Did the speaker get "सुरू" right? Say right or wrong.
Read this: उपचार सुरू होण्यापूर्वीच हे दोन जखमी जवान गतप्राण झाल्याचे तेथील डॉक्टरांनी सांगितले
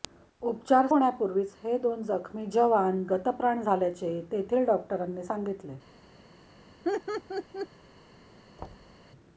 wrong